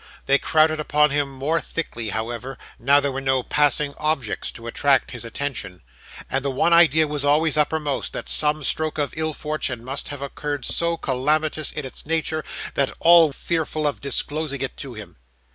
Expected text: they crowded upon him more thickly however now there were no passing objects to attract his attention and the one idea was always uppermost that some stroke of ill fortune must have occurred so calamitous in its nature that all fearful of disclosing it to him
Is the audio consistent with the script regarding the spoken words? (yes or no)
yes